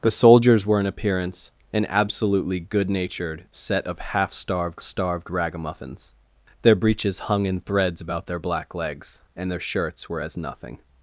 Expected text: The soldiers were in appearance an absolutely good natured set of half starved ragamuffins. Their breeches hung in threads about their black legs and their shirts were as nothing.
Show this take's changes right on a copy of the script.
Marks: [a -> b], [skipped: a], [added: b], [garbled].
The soldiers were in appearance an absolutely good natured set of half starved [added: starved] ragamuffins. Their breeches hung in threads about their black legs and their shirts were as nothing.